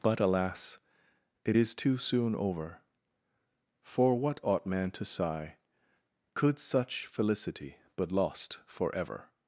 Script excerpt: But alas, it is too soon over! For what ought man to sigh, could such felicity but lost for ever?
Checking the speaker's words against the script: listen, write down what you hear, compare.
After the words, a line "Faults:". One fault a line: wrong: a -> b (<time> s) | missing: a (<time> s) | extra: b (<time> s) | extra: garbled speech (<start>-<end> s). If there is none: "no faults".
But alas, it is too soon over! For what ought man to sigh, could such felicity but lost for ever?
Faults:
no faults